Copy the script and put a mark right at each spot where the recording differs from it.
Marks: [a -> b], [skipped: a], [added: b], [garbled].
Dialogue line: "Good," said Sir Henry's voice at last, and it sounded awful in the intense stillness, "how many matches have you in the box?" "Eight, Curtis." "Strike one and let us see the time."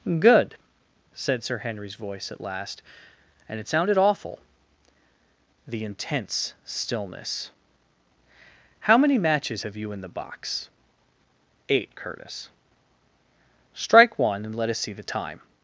"Good," said Sir Henry's voice at last, and it sounded awful [skipped: in] the intense stillness, "how many matches have you in the box?" "Eight, Curtis." "Strike one and let us see the time."